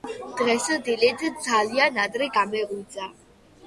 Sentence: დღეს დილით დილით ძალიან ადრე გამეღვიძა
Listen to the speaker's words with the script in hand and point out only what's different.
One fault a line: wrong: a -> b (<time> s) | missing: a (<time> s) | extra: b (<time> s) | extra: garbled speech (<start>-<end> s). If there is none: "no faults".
missing: დილით (1.3 s)